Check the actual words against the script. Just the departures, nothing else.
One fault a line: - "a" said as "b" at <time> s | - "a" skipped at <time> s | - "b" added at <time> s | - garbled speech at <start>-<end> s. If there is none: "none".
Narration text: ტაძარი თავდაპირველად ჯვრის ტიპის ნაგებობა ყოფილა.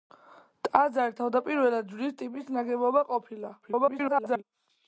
- garbled speech at 3.6-4.4 s